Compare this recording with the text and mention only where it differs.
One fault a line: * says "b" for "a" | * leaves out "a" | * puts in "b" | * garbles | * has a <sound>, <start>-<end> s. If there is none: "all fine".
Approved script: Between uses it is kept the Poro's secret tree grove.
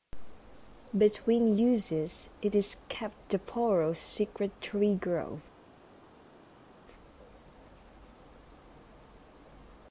all fine